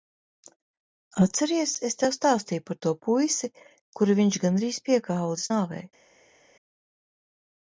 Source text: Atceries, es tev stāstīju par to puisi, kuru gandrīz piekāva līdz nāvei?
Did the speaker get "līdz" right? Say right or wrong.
right